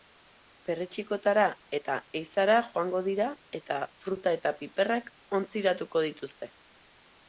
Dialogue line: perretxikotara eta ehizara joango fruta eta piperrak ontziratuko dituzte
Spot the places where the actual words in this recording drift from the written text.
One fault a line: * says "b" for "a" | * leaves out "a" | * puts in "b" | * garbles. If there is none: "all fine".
* puts in "dira eta"